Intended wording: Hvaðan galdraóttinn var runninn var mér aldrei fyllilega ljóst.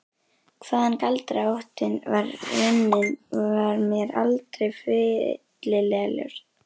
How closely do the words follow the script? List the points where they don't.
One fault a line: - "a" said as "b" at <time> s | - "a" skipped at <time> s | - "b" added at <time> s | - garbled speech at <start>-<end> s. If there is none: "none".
none